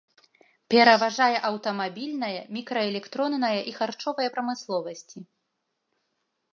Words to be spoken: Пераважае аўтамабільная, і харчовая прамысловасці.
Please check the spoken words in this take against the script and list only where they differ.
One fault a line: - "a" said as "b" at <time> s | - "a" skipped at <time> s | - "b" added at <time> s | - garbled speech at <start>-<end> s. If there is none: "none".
- "мікраэлектронная" added at 2.6 s